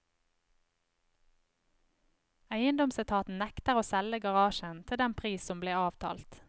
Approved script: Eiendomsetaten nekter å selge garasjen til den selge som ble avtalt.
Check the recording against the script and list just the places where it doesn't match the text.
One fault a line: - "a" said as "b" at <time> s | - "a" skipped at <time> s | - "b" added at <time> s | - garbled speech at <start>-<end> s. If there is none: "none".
- "selge" said as "pris" at 5.2 s